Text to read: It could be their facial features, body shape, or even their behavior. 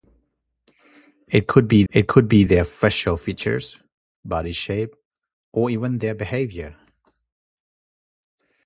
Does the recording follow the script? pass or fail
fail